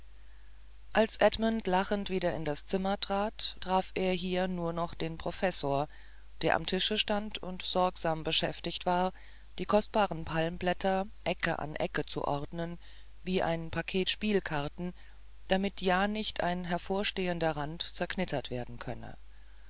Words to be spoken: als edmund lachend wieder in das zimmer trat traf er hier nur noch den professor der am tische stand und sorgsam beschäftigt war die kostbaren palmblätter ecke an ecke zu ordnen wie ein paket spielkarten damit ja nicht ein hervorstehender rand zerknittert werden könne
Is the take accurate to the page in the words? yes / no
yes